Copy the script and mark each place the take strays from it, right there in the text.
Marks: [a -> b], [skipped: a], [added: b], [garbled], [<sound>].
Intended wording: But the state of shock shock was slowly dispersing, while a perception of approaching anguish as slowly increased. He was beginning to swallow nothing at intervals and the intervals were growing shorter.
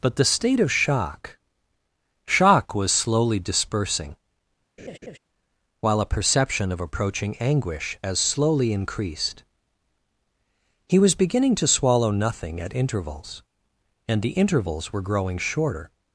But the state of shock shock was slowly dispersing, [laugh] while a perception of approaching anguish as slowly increased. He was beginning to swallow nothing at intervals and the intervals were growing shorter.